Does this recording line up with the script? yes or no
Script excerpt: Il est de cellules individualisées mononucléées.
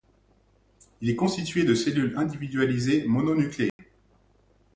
no